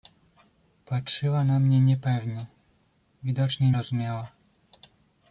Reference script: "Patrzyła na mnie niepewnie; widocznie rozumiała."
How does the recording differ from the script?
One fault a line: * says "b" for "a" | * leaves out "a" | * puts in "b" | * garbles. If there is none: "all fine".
all fine